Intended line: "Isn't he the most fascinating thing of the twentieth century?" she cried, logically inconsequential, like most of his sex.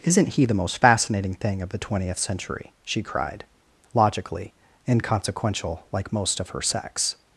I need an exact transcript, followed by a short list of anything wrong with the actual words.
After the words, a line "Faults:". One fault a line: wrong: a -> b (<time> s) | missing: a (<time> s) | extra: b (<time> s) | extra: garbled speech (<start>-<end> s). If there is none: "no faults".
"Isn't he the most fascinating thing of the twentieth century?" she cried, logically inconsequential, like most of her sex.
Faults:
wrong: his -> her (6.5 s)